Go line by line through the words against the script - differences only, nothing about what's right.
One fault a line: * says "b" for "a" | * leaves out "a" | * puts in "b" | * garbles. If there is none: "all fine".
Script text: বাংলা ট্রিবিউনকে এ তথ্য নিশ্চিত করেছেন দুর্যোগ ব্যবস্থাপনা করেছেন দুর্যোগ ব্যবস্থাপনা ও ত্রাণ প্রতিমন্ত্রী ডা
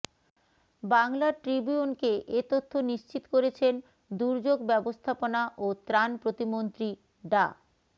* leaves out "করেছেন দুর্যোগ ব্যবস্থাপনা"